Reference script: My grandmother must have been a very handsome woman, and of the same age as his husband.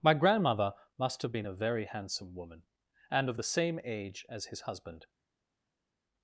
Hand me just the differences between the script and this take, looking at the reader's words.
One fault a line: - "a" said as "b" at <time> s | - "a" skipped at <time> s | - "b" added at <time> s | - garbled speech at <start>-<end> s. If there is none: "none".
none